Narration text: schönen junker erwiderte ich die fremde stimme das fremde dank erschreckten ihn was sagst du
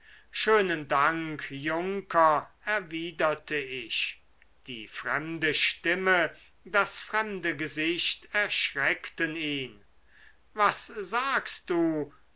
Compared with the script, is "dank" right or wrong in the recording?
wrong